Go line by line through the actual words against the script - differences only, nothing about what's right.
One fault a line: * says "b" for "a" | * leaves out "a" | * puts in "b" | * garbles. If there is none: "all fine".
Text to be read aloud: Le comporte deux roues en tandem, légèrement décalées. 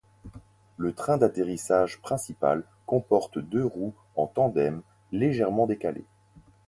* puts in "train d'atterrissage principal"